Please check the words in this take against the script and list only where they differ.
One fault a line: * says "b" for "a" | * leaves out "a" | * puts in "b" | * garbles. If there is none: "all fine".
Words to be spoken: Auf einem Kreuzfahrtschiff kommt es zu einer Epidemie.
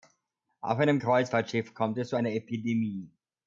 all fine